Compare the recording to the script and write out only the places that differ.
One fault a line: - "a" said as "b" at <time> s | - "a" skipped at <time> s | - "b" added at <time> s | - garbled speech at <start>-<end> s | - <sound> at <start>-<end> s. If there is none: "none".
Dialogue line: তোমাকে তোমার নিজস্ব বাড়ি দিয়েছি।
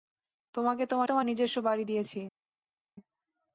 - "তোমার" added at 1.0 s